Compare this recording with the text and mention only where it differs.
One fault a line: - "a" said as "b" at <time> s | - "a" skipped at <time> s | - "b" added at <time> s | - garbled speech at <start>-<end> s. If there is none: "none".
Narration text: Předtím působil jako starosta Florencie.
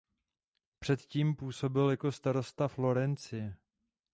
none